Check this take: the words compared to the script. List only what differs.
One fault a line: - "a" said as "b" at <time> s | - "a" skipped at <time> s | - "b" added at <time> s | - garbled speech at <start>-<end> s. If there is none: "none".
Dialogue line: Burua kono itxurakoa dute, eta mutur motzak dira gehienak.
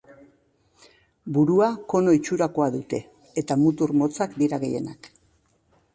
none